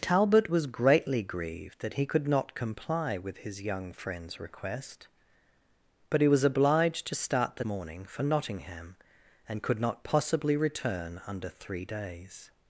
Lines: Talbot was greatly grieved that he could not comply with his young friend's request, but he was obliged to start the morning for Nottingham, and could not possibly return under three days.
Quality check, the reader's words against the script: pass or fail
pass